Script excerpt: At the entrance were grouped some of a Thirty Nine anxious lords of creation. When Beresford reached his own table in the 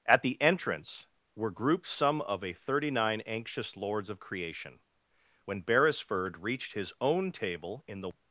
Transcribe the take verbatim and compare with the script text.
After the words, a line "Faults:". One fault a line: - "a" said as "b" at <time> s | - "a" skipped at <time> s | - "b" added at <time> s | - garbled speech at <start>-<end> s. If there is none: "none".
At the entrance were grouped some of a Thirty Nine anxious lords of creation. When Beresford reached his own table in the
Faults:
none